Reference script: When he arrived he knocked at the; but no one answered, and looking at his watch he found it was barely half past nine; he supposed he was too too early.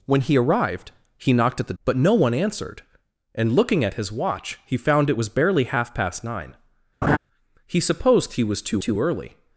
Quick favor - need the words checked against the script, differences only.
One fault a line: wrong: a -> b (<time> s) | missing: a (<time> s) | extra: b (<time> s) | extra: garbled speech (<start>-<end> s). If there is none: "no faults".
no faults